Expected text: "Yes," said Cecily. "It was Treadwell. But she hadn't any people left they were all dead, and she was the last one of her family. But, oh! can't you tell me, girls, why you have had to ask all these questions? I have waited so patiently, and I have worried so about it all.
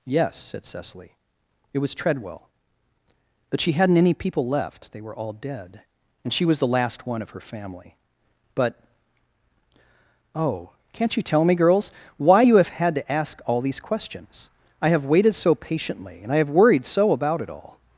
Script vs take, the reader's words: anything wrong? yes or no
no